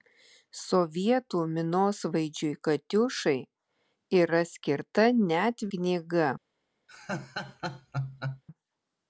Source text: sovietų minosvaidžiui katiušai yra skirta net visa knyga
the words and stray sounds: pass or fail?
fail